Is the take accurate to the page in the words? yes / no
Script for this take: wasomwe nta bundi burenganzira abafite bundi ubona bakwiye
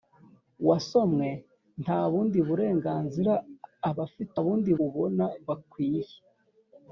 yes